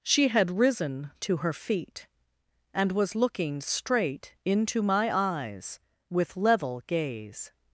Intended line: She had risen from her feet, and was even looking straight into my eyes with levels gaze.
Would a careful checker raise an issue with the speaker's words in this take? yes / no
yes